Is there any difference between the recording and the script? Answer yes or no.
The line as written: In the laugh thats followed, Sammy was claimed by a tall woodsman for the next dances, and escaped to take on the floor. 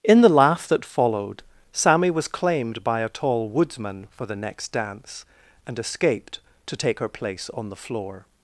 yes